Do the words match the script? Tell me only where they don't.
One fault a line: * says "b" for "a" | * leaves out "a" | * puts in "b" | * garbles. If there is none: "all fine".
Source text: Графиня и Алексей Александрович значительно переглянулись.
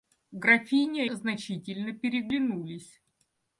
* leaves out "и Алексей Александрович"